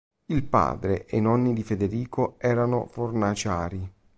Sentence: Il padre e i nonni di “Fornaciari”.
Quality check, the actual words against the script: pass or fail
fail